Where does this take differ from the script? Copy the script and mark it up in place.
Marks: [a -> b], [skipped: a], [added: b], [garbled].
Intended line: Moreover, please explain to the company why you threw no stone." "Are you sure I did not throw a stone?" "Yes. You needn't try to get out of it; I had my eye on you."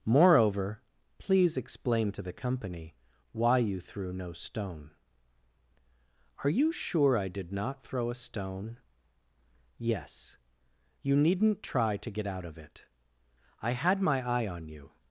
Moreover, please explain to the company why you threw no stone." "Are you sure I did not throw a stone?" "Yes. You needn't try to get out of it; I had my eye on you."